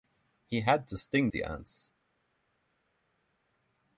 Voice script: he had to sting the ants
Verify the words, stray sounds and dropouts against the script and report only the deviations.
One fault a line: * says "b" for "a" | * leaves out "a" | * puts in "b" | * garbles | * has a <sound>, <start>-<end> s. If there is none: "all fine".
all fine